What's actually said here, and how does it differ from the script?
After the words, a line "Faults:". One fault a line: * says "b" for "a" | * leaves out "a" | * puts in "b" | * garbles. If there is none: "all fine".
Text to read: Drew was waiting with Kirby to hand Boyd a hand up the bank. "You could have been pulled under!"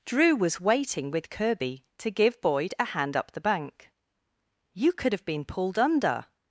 Drew was waiting with Kirby to give Boyd a hand up the bank. "You could have been pulled under!"
Faults:
* says "give" for "hand"